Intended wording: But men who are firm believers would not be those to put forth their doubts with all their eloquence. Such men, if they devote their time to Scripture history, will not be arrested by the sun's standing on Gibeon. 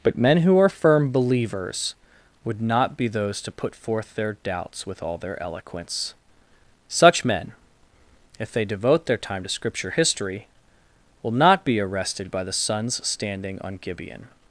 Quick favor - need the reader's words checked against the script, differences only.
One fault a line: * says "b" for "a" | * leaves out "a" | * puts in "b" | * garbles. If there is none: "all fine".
all fine